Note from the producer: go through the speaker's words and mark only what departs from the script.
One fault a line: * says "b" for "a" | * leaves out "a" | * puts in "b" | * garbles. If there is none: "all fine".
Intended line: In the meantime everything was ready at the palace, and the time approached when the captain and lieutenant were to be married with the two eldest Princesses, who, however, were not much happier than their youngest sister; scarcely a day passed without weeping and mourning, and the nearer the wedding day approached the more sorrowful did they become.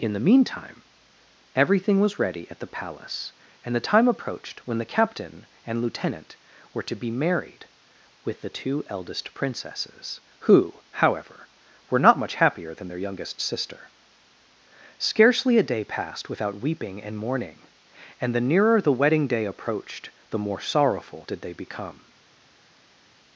all fine